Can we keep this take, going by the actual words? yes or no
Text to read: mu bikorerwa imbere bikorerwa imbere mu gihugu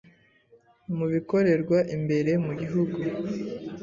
no